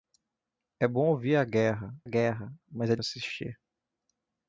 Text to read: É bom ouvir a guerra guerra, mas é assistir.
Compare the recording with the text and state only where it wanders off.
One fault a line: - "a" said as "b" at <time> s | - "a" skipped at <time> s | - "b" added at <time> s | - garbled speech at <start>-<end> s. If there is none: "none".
none